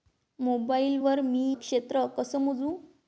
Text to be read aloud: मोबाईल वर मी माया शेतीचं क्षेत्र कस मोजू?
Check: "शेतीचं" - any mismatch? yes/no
yes